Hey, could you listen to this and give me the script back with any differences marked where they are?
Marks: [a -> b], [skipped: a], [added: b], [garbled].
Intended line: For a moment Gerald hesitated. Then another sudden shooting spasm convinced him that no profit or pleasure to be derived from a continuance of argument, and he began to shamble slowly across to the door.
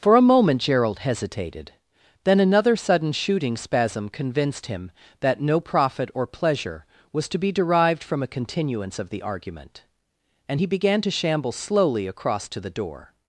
For a moment Gerald hesitated. Then another sudden shooting spasm convinced him that no profit or pleasure [added: was] to be derived from a continuance of [added: the] argument, and he began to shamble slowly across to the door.